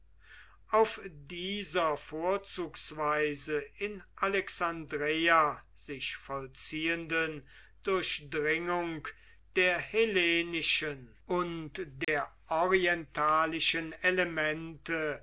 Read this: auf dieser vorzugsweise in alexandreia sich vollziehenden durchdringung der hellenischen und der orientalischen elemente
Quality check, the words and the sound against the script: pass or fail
fail